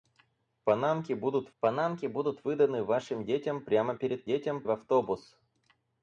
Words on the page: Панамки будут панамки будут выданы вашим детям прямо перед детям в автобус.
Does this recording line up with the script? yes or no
yes